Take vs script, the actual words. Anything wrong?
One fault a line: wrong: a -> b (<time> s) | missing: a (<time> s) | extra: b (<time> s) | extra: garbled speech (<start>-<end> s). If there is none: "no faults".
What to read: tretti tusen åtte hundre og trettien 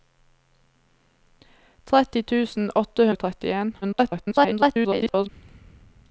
missing: hundre (3.1 s)
extra: garbled speech (3.8-5.3 s)